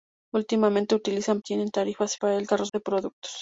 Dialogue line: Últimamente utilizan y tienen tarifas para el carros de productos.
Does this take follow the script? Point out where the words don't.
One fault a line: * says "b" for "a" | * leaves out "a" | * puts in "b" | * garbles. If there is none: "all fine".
all fine